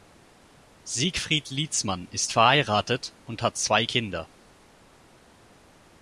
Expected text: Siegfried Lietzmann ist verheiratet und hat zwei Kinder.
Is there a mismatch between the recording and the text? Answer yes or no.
no